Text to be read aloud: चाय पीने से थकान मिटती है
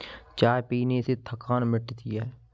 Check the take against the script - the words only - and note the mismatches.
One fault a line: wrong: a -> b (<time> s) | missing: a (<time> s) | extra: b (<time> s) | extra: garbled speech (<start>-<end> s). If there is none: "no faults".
no faults